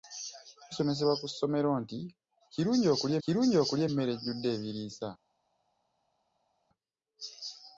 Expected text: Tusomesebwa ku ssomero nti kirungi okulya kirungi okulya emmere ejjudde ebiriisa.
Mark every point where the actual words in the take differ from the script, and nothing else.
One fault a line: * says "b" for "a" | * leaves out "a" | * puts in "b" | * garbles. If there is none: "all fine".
all fine